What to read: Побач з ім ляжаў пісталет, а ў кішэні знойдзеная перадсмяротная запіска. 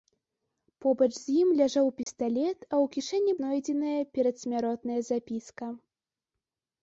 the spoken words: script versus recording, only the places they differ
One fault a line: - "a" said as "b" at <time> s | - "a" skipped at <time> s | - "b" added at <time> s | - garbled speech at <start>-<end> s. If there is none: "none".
none